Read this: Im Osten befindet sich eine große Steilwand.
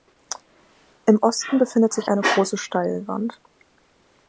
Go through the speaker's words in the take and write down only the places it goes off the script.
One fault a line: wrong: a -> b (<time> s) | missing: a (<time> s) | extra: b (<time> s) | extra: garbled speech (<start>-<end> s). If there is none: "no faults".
no faults